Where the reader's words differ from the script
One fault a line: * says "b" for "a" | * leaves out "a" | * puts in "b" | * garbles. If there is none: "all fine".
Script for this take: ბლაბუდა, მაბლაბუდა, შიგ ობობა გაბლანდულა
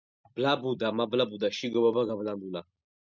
all fine